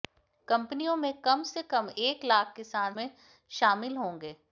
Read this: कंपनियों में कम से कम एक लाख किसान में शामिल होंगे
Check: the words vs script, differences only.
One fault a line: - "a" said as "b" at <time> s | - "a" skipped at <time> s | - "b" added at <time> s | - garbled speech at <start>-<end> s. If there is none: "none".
none